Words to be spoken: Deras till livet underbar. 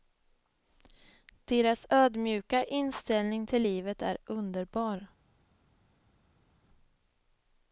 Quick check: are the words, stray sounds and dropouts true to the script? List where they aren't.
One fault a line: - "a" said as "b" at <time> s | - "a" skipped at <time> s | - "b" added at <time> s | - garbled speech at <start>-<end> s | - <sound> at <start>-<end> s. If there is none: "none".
- "ödmjuka inställning" added at 1.9 s
- "är" added at 4.0 s